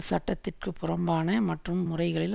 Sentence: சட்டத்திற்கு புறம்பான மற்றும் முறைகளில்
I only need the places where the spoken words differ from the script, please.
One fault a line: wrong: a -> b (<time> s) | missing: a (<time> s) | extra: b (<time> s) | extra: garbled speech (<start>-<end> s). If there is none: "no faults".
no faults